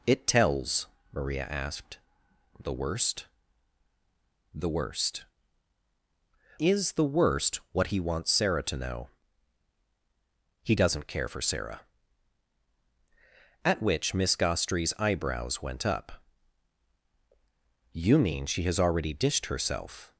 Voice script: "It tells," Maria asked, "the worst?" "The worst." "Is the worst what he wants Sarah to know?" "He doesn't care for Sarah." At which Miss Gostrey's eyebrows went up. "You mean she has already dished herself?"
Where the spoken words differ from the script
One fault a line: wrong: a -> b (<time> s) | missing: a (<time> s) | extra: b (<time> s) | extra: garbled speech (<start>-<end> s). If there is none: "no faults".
no faults